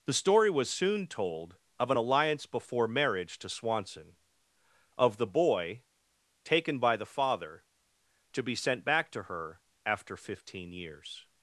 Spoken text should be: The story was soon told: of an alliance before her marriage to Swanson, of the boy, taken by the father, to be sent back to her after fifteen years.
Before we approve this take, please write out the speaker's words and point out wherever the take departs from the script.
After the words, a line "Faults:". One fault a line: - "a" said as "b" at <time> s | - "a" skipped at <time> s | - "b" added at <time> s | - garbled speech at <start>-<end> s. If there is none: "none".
The story was soon told: of an alliance before marriage to Swanson, of the boy, taken by the father, to be sent back to her after fifteen years.
Faults:
- "her" skipped at 2.9 s